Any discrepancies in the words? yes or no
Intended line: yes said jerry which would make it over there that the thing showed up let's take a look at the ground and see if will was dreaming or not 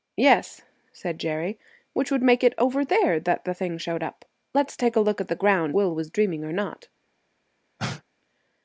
yes